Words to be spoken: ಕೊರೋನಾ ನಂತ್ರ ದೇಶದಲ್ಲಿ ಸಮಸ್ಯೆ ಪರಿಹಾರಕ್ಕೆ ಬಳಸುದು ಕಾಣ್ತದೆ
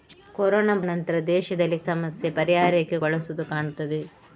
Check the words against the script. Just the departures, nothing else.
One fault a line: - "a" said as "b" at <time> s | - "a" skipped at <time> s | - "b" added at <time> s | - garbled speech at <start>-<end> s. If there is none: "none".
none